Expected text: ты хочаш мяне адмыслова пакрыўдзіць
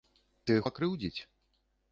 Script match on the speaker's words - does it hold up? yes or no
no